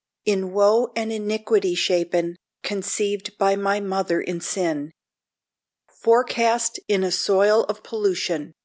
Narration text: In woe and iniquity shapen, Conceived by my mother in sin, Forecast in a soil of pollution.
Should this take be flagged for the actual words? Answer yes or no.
no